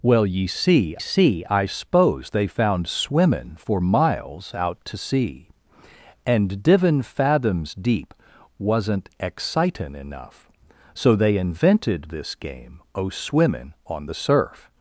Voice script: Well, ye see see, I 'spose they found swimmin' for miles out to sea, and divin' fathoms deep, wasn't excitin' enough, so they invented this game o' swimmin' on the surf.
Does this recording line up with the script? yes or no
yes